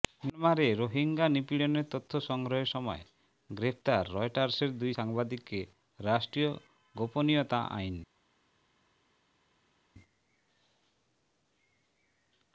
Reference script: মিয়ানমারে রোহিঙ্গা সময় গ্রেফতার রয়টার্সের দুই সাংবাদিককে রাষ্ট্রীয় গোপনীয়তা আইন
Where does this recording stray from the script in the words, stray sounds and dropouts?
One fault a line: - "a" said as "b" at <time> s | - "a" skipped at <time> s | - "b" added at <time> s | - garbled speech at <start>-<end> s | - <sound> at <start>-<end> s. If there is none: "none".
- "নিপীড়নের তথ্য সংগ্রহের" added at 1.3 s